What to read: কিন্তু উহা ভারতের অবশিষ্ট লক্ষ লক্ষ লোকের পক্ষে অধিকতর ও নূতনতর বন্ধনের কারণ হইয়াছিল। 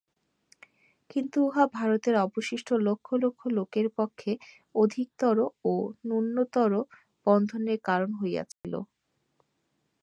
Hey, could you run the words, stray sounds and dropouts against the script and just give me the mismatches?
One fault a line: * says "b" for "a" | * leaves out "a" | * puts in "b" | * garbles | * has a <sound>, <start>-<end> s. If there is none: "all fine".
* has a dropout, 8.5-8.6 s